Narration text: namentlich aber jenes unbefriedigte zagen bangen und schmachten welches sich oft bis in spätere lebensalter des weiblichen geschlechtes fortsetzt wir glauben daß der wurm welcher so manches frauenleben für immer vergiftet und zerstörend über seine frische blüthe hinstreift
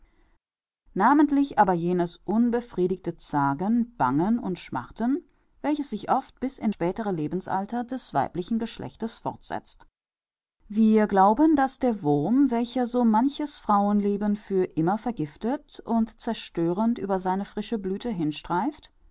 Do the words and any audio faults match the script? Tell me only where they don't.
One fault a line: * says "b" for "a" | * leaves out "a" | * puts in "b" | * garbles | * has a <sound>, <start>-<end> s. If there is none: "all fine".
all fine